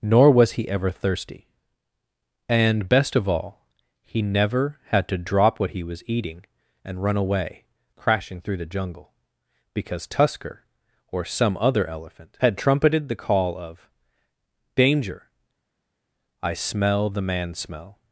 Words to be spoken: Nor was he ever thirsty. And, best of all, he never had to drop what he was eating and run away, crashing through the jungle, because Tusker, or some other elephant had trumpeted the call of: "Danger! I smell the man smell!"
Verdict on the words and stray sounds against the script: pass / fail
pass